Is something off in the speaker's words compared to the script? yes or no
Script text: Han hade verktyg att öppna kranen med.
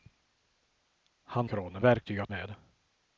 yes